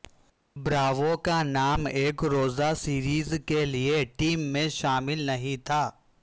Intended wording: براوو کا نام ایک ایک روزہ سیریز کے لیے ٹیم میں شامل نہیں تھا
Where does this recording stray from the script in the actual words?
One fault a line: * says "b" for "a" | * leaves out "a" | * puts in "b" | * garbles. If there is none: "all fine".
* leaves out "ایک"